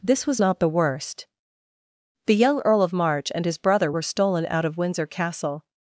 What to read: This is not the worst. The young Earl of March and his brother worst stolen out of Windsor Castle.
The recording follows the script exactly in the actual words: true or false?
false